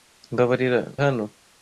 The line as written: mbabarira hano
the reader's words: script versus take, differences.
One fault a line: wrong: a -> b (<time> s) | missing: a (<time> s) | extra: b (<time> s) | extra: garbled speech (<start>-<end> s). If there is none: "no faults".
no faults